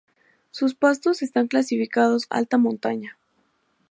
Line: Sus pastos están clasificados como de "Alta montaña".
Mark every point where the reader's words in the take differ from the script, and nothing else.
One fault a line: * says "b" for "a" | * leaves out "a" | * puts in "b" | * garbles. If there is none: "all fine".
* leaves out "como de"